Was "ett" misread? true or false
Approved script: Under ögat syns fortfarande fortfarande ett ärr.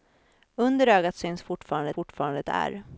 false